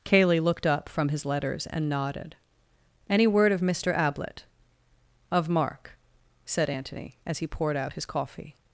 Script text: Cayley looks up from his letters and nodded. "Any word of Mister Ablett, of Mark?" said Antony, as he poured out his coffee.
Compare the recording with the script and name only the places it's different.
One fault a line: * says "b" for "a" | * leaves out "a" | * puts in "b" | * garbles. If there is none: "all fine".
* says "looked" for "looks"